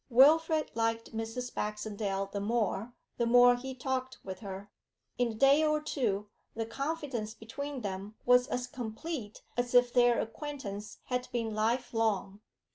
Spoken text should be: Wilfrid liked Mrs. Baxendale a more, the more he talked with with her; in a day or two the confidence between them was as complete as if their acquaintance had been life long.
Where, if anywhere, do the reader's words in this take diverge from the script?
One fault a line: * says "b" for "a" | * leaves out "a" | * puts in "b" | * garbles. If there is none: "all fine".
* says "the" for "a"
* leaves out "with"